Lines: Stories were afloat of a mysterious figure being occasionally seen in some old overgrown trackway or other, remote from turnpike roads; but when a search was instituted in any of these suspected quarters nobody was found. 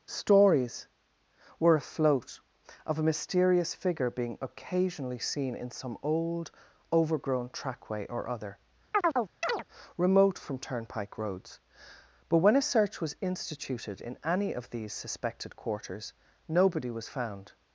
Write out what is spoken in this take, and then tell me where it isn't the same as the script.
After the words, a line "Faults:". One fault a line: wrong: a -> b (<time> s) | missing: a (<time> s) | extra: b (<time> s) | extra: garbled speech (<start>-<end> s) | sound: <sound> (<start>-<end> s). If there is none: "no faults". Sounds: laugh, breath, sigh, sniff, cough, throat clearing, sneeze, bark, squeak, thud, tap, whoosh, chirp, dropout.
Stories were afloat of a mysterious figure being occasionally seen in some old overgrown trackway or other, remote from turnpike roads; but when a search was instituted in any of these suspected quarters nobody was found.
Faults:
sound: chirp (8.9-9.6 s)